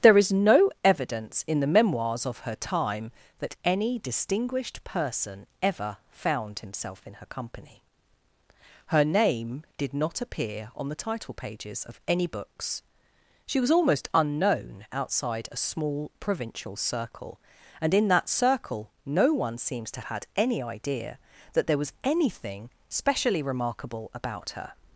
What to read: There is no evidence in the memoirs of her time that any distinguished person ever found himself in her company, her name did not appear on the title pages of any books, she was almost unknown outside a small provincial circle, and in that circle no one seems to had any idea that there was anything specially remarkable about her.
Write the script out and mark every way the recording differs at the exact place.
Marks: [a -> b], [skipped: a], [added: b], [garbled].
There is no evidence in the memoirs of her time that any distinguished person ever found himself in her company, her name did not appear on the title pages of any books, she was almost unknown outside a small provincial circle, and in that circle no one seems to had any idea that there was anything specially remarkable about her.